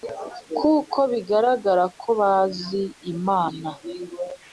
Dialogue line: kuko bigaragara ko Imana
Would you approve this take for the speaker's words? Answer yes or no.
no